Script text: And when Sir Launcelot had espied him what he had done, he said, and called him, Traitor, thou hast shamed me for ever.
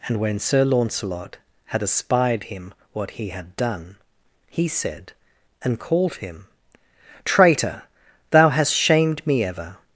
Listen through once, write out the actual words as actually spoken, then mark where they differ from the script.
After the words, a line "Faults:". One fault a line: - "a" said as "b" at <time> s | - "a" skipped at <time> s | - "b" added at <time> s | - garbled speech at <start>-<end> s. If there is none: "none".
And when Sir Launcelot had espied him what he had done, he said, and called him, Traitor, thou hast shamed me ever.
Faults:
- "for" skipped at 9.4 s